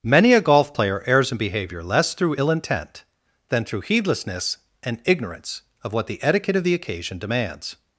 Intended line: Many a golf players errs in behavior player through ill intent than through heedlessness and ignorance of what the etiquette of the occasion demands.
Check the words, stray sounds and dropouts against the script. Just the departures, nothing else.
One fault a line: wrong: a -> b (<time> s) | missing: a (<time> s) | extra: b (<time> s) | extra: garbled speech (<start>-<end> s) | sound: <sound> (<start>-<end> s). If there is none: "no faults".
wrong: players -> player (0.7 s)
wrong: player -> less (1.8 s)